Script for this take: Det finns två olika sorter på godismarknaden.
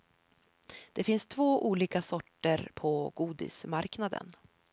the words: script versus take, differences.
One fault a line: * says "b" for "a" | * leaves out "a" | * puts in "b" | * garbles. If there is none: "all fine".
all fine